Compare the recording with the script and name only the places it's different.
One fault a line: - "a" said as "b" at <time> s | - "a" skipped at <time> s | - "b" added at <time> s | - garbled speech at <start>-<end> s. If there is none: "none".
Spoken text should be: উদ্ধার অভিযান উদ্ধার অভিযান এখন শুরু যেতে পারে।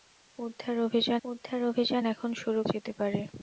none